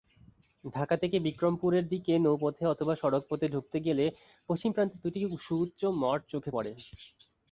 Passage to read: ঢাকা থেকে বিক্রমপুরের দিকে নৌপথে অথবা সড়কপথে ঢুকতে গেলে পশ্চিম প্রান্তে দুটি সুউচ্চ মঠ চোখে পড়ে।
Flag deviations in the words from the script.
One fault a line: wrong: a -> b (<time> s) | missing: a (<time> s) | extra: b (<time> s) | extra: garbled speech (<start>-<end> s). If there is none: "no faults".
no faults